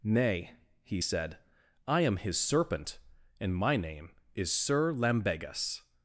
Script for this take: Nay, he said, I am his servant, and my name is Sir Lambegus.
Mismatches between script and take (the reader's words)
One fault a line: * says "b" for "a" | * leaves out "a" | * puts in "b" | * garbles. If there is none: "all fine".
* says "serpent" for "servant"